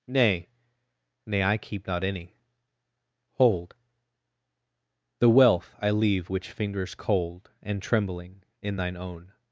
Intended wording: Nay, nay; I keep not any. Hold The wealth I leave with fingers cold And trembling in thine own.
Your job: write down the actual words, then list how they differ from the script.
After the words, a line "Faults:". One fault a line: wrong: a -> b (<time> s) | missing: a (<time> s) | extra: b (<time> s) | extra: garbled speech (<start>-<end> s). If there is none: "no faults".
Nay, nay; I keep not any. Hold The wealth I leave which fingers cold And trembling in thine own.
Faults:
wrong: with -> which (6.3 s)